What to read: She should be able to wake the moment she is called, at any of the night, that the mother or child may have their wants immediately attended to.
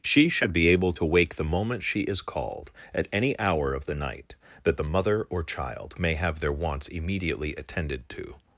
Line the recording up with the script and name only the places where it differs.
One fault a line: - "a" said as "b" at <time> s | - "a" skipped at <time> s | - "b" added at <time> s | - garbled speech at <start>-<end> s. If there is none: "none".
- "hour" added at 3.4 s